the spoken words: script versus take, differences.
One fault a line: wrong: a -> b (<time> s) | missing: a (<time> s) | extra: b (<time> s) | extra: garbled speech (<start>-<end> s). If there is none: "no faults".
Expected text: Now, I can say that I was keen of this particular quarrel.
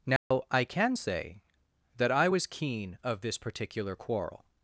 no faults